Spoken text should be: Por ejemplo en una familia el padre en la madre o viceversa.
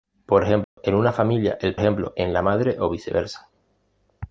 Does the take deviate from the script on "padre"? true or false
true